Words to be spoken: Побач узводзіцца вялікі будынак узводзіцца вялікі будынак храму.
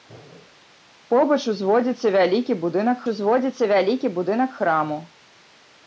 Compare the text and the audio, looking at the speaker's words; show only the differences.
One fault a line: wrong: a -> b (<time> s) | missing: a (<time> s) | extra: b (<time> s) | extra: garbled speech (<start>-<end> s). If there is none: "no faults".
no faults